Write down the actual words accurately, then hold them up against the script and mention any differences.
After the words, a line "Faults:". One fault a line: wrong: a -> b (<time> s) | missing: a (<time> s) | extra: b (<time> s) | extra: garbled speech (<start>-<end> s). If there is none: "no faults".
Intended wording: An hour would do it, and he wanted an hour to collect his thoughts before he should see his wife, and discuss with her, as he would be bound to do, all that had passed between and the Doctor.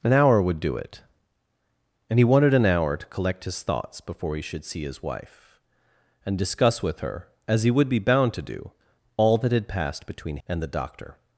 An hour would do it, and he wanted an hour to collect his thoughts before he should see his wife, and discuss with her, as he would be bound to do, all that had passed between and the Doctor.
Faults:
no faults